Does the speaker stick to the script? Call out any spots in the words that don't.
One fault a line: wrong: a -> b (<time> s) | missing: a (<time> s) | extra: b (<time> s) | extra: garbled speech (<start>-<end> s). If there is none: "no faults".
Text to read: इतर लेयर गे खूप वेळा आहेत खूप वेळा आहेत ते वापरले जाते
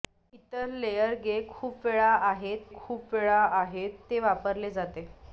no faults